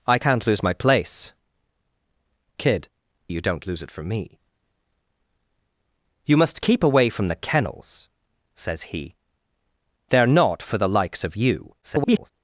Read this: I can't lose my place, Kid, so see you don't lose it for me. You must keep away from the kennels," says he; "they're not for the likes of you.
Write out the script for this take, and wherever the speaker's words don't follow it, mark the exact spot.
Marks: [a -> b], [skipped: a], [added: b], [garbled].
I can't lose my place, Kid, [skipped: so see] you don't lose it for me. You must keep away from the kennels," says he; "they're not for the likes of you. [garbled]